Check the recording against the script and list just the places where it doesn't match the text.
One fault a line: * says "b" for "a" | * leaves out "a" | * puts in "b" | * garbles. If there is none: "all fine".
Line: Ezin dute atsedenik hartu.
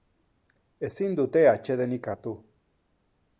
all fine